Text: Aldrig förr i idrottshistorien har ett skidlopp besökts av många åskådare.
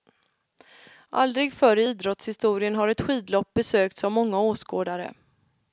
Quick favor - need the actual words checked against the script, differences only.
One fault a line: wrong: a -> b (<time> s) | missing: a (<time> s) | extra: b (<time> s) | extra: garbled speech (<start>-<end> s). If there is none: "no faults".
no faults